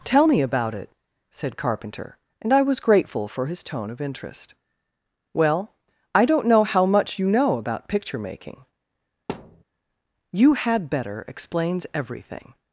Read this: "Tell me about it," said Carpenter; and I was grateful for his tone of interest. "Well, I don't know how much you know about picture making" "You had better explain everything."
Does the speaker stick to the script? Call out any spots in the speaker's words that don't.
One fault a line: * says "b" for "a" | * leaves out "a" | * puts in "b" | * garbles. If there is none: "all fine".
* says "explains" for "explain"